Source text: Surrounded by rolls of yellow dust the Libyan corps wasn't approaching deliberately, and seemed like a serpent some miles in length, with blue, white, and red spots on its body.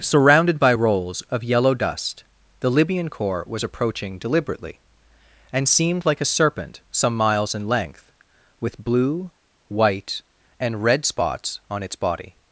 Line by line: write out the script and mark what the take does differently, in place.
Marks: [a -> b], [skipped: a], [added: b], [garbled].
Surrounded by rolls of yellow dust the Libyan corps [wasn't -> was] approaching deliberately, and seemed like a serpent some miles in length, with blue, white, and red spots on its body.